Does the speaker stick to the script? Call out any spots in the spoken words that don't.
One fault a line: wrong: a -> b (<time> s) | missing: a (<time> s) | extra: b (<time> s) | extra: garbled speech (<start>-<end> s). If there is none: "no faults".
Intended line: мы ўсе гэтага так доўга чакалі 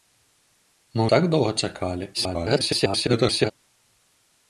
missing: ўсе гэтага (1.0 s)
extra: garbled speech (2.1-3.5 s)